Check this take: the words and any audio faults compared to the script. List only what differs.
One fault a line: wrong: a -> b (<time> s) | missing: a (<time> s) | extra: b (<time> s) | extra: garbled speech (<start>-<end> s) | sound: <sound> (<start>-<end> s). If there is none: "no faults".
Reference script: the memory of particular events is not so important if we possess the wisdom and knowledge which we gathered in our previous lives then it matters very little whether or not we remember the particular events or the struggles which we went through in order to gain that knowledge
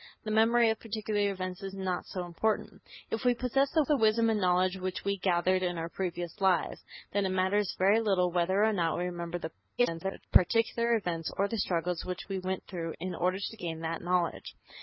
extra: the (3.8 s)
extra: garbled speech (9.8-10.3 s)